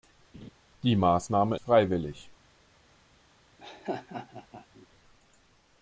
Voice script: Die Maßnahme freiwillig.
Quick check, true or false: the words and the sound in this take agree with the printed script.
false